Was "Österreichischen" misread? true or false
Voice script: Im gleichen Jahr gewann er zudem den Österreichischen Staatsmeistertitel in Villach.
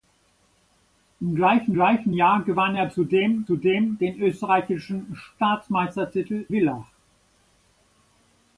false